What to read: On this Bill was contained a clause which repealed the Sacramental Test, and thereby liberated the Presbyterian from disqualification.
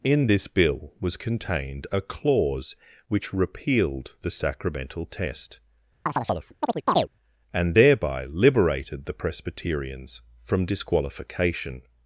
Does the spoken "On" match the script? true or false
false